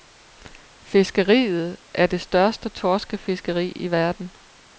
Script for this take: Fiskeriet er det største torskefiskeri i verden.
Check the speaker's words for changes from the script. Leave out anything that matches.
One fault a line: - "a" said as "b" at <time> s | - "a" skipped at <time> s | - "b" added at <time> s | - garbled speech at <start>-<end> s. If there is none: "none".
none